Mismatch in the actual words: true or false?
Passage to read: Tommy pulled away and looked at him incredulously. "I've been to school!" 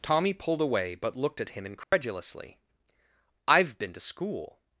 true